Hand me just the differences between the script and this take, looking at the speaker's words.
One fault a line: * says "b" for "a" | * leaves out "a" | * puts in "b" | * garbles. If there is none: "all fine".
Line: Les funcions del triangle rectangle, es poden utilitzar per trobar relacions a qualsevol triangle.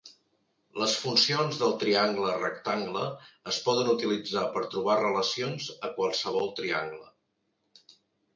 all fine